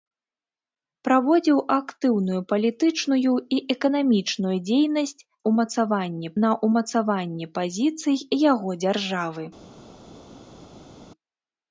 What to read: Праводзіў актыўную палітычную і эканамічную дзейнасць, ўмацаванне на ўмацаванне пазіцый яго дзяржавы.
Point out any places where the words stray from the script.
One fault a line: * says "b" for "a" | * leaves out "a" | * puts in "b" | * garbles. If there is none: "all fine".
all fine